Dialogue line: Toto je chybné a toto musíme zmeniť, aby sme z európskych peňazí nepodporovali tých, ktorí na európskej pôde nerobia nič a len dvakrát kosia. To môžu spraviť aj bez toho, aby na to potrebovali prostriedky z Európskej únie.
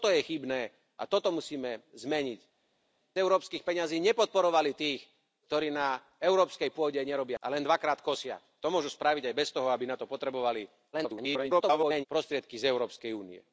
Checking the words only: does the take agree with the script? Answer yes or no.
no